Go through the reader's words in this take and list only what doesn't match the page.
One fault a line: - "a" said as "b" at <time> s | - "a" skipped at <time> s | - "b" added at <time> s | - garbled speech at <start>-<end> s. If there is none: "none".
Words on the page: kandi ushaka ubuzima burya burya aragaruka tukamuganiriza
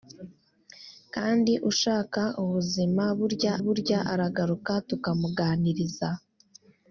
none